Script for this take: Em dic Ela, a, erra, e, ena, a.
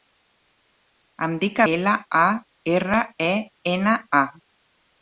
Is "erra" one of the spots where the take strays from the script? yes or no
no